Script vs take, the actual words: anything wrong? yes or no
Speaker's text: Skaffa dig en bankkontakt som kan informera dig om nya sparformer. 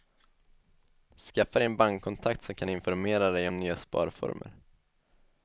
no